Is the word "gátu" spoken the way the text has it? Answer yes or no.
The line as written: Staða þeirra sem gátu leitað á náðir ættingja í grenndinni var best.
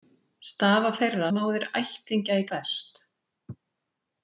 no